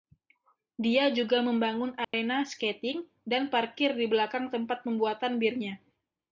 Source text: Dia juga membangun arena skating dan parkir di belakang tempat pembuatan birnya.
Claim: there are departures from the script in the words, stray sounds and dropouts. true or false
true